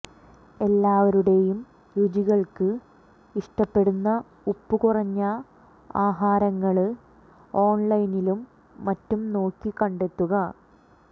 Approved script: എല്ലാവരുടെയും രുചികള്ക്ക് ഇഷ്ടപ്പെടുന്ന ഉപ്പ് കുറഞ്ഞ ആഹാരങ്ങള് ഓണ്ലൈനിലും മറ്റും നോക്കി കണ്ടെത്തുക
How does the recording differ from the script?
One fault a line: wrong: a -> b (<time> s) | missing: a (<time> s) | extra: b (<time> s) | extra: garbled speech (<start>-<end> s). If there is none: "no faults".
no faults